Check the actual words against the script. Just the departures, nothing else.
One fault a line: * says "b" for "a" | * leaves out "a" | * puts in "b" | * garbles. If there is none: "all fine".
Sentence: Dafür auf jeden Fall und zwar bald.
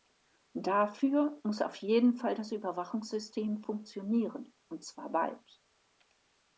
* puts in "muss"
* puts in "das Überwachungssystem funktionieren"